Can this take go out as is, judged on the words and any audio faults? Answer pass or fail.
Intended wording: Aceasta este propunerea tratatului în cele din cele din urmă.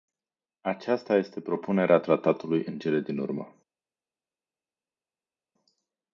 fail